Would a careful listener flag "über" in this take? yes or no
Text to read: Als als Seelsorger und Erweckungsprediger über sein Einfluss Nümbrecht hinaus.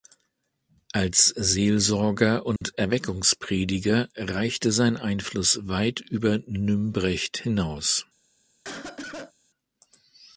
yes